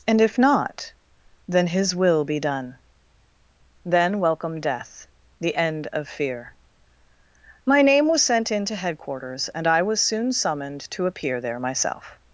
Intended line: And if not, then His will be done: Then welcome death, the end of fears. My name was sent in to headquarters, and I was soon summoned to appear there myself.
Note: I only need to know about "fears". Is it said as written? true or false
false